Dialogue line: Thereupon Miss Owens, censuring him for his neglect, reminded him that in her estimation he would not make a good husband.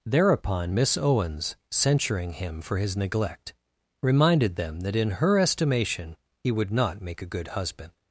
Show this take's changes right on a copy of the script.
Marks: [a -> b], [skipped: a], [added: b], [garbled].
Thereupon Miss Owens, censuring him for his neglect, reminded [him -> them] that in her estimation he would not make a good husband.